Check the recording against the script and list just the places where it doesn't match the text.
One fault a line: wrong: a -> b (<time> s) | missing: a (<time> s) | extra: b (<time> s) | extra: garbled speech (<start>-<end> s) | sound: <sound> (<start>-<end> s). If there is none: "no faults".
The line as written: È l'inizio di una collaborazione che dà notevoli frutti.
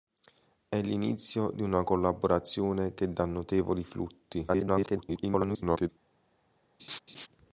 extra: garbled speech (4.5-5.9 s)
sound: laugh (6.8-7.3 s)